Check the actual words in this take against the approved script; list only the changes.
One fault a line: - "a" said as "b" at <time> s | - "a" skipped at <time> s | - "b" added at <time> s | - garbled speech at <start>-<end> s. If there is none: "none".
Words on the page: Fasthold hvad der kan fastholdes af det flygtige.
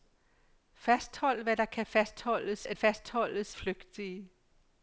- "det" said as "fastholdes" at 2.7 s